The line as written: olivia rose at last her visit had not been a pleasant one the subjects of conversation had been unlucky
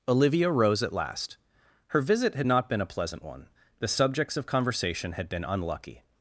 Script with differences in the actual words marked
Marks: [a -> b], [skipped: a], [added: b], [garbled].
olivia rose at last her visit had not been a pleasant one the subjects of conversation had been unlucky